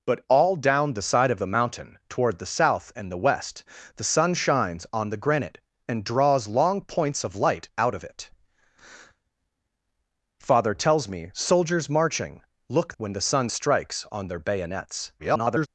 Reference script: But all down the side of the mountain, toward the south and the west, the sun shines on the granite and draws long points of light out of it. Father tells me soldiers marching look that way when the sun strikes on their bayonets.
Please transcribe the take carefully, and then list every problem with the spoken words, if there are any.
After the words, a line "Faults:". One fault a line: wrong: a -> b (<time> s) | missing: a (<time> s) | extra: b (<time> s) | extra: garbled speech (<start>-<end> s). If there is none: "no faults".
But all down the side of the mountain, toward the south and the west, the sun shines on the granite and draws long points of light out of it. Father tells me soldiers marching look when the sun strikes on their bayonets. [garbled]
Faults:
missing: that way (12.9 s)
extra: garbled speech (15.2-15.7 s)